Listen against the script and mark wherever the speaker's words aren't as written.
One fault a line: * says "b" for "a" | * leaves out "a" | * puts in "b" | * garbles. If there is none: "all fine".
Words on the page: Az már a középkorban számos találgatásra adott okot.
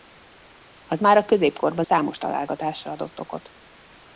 all fine